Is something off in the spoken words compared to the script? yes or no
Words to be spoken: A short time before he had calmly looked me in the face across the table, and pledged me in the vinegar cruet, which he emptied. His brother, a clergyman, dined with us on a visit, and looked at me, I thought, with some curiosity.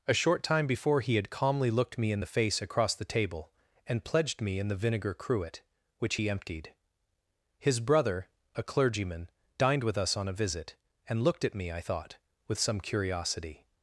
no